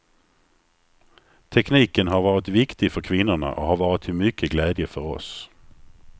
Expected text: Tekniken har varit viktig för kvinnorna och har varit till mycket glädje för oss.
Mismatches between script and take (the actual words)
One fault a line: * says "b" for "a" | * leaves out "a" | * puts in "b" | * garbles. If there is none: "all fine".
all fine